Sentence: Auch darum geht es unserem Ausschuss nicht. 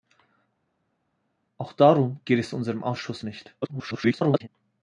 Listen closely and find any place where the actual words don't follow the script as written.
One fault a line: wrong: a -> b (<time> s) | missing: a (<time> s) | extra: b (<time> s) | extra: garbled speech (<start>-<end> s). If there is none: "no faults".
extra: garbled speech (3.6-4.5 s)